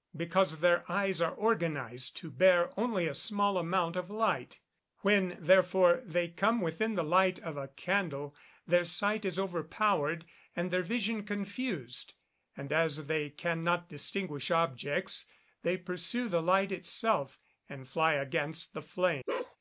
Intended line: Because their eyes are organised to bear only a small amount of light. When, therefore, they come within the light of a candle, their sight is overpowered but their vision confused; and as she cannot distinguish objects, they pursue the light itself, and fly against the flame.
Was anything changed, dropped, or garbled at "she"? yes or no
yes